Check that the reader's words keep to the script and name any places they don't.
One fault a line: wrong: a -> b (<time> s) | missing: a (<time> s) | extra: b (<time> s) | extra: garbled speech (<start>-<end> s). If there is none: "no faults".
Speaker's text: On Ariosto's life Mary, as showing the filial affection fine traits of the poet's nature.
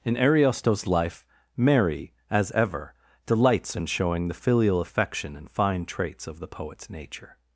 wrong: On -> In (0.0 s)
extra: ever delights in (2.5 s)
extra: and (5.3 s)